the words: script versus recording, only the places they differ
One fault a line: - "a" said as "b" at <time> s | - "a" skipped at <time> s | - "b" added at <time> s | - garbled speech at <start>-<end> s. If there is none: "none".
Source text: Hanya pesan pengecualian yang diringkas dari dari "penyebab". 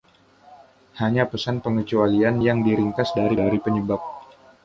none